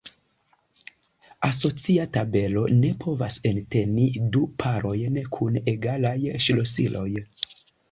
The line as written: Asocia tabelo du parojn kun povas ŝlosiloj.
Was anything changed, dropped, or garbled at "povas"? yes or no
yes